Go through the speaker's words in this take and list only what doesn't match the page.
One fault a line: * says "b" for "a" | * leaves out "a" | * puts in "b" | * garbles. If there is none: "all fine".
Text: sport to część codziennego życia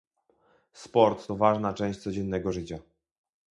* puts in "ważna"